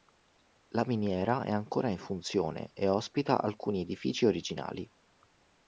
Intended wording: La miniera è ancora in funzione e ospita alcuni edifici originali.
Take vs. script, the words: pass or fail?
pass